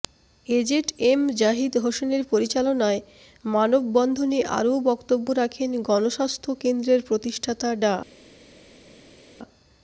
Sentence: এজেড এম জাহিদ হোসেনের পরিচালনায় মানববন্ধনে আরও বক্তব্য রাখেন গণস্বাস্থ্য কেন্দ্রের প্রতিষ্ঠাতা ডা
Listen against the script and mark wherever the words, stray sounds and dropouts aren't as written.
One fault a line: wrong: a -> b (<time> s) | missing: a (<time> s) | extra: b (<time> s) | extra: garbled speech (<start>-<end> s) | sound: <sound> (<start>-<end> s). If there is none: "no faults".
no faults